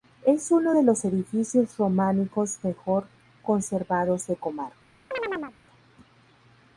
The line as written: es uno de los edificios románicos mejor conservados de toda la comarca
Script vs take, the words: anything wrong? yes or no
yes